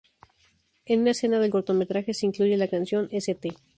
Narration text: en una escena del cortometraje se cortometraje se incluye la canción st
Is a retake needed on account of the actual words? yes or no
yes